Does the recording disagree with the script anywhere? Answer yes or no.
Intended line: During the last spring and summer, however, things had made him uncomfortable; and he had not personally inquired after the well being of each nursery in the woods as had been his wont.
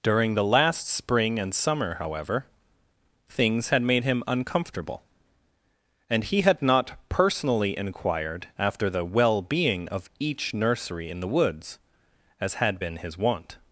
no